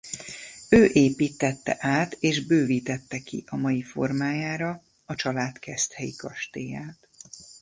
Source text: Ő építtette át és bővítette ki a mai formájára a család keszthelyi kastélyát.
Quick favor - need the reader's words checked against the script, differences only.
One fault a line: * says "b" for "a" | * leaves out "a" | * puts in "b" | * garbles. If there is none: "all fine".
all fine